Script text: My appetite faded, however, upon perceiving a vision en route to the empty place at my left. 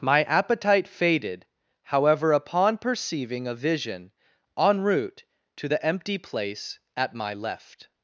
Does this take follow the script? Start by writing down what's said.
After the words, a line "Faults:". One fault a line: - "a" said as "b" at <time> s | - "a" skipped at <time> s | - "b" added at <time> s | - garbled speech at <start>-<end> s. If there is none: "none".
My appetite faded, however, upon perceiving a vision en route to the empty place at my left.
Faults:
none